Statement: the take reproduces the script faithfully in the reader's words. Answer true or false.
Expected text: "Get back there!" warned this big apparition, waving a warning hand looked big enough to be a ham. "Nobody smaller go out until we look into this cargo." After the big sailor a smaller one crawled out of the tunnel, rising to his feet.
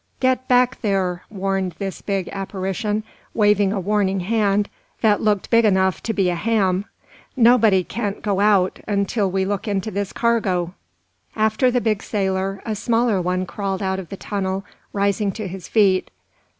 false